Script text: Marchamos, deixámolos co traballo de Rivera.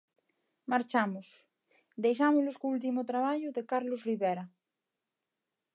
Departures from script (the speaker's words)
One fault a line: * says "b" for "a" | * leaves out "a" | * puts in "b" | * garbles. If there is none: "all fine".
* puts in "último"
* puts in "Carlos"